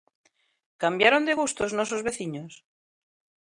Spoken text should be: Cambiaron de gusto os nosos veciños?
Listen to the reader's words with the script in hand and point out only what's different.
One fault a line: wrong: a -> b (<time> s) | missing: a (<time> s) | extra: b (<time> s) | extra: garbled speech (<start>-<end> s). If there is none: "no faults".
no faults